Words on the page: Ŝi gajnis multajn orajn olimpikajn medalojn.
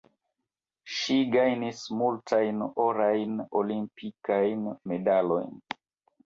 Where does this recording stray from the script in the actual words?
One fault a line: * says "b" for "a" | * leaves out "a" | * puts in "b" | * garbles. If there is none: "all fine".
all fine